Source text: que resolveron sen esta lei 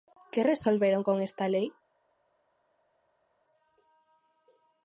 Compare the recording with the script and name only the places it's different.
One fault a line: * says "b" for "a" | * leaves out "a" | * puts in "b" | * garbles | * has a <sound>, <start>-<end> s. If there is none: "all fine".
* says "con" for "sen"